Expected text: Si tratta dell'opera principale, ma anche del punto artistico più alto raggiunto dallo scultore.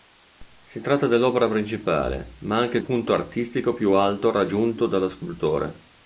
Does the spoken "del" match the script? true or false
false